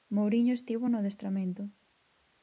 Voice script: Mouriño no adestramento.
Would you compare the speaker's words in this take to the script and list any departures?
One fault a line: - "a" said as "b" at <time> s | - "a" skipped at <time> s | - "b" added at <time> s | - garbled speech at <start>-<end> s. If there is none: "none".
- "estivo" added at 0.5 s